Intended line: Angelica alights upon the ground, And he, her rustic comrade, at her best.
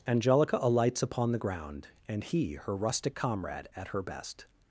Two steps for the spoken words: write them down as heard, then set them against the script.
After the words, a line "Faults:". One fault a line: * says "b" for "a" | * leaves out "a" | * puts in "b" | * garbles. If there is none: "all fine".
Angelica alights upon the ground, And he, her rustic comrade, at her best.
Faults:
all fine